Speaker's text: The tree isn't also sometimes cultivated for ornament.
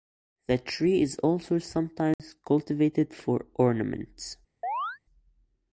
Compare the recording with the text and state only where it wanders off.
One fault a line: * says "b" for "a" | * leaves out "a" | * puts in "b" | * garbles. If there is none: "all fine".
* says "is" for "isn't"